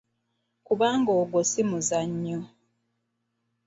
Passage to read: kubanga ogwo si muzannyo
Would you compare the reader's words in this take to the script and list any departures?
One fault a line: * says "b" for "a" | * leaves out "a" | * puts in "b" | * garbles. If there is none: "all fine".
all fine